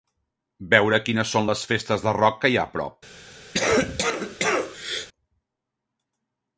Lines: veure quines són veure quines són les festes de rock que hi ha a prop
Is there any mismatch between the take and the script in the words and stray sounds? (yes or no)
yes